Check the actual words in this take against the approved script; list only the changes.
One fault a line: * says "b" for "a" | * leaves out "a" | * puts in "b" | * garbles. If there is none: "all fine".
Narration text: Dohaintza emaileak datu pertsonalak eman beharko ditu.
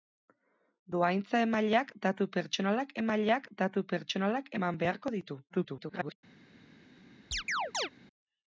* puts in "emaileak datu pertsonalak"
* garbles